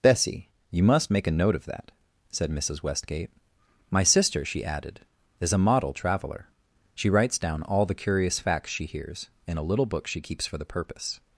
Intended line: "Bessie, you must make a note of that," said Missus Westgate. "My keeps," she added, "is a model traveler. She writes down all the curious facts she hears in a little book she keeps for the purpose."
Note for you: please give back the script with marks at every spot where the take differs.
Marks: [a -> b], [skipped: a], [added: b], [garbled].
"Bessie, you must make a note of that," said Missus Westgate. "My [keeps," -> sister] she added, "is a model traveler. She writes down all the curious facts she hears in a little book she keeps for the purpose."